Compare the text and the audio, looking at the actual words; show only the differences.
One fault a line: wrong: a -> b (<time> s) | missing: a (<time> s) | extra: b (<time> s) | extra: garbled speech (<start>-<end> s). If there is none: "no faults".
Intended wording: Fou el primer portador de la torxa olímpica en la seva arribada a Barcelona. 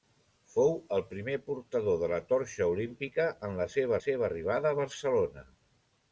extra: seva (4.1 s)